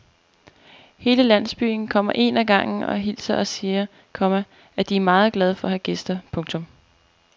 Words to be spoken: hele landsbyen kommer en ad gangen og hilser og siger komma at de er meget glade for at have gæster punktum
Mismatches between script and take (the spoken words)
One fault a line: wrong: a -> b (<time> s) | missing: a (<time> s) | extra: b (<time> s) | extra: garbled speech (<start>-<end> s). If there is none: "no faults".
no faults